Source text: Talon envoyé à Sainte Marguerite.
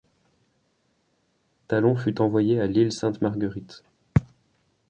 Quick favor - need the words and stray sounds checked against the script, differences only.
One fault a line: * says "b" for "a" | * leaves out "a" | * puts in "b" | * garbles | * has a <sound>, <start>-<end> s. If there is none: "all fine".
* puts in "fut"
* puts in "l'île"